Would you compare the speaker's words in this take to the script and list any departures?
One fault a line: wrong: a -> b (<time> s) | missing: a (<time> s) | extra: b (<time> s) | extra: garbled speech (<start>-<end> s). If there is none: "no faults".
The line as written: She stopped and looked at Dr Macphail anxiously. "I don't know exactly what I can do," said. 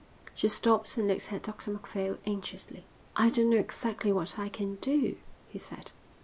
extra: he (5.4 s)